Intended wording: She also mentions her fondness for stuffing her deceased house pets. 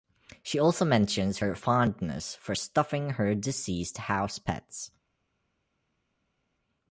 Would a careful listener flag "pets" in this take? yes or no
no